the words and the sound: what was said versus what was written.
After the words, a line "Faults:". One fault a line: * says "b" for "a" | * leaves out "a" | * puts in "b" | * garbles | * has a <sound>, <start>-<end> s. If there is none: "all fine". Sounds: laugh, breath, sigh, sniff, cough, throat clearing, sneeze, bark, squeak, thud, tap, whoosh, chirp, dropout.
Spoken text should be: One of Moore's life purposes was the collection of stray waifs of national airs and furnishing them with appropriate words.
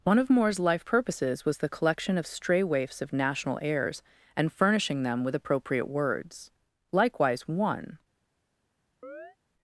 One of Moore's life purposes was the collection of stray waifs of national airs and furnishing them with appropriate words. Likewise, one
Faults:
* puts in "Likewise one"
* has a chirp, 9.0-9.4 s